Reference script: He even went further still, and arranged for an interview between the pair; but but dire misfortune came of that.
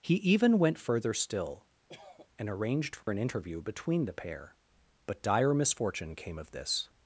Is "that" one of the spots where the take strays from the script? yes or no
yes